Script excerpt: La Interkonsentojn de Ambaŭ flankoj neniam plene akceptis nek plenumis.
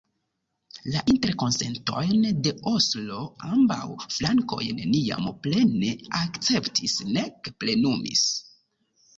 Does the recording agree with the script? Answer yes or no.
no